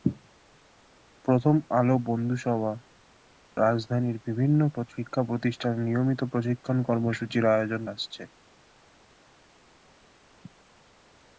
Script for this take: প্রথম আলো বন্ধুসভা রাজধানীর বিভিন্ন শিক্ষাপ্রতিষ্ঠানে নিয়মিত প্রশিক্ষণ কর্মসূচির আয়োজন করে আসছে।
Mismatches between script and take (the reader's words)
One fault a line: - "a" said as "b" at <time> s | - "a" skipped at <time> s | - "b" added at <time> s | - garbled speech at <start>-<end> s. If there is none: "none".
- "করে" skipped at 7.8 s